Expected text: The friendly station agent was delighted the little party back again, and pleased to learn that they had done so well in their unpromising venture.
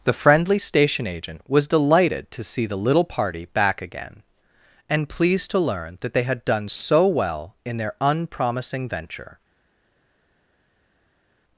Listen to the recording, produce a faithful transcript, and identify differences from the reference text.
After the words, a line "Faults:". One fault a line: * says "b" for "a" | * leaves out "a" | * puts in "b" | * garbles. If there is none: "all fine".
The friendly station agent was delighted to see the little party back again, and pleased to learn that they had done so well in their unpromising venture.
Faults:
* puts in "to see"